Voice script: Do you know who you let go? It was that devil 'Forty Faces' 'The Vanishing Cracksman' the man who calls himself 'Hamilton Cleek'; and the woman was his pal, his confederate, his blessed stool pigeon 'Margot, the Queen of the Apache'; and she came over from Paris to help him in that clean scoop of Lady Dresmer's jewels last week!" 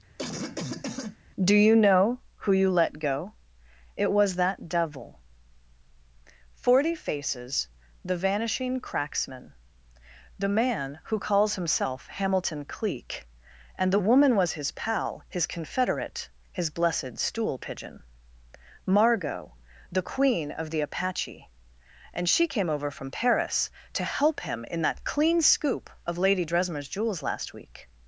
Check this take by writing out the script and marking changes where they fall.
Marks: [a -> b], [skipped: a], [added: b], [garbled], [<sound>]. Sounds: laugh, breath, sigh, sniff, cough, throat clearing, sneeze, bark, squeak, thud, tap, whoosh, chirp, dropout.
[cough] Do you know who you let go? It was that devil 'Forty Faces' 'The Vanishing Cracksman' the man who calls himself 'Hamilton Cleek'; and the woman was his pal, his confederate, his blessed stool pigeon 'Margot, the Queen of the Apache'; and she came over from Paris to help him in that clean scoop of Lady Dresmer's jewels last week!"